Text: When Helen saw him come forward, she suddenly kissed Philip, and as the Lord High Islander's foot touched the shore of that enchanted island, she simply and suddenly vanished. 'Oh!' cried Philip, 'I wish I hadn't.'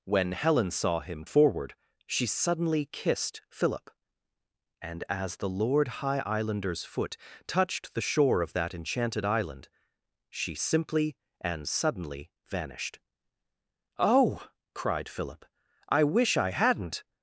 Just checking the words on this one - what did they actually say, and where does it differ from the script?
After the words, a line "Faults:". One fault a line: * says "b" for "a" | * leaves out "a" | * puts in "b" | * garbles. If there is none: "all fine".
When Helen saw him forward, she suddenly kissed Philip, and as the Lord High Islander's foot touched the shore of that enchanted island, she simply and suddenly vanished. 'Oh!' cried Philip, 'I wish I hadn't.'
Faults:
* leaves out "come"